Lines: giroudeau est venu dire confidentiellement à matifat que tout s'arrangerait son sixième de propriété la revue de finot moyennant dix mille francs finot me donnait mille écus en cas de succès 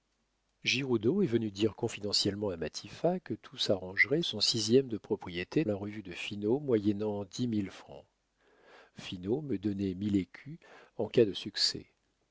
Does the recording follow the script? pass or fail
pass